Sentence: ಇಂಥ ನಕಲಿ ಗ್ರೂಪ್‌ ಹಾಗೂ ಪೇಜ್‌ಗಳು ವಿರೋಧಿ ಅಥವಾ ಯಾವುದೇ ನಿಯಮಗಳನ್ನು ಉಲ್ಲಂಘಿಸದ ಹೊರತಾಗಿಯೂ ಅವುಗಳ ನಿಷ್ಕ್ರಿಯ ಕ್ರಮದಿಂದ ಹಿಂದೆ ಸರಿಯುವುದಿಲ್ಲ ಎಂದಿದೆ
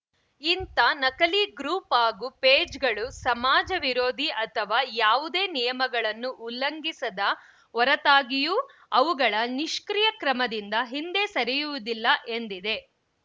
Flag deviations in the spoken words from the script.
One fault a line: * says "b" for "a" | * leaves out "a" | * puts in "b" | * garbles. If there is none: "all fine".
* puts in "ಸಮಾಜ"